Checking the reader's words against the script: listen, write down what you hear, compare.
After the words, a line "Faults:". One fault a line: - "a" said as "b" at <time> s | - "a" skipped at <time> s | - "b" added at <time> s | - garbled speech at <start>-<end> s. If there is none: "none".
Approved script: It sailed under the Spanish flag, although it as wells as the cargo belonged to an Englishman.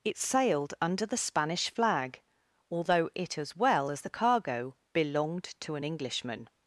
It sailed under the Spanish flag, although it as well as the cargo belonged to an Englishman.
Faults:
- "wells" said as "well" at 3.5 s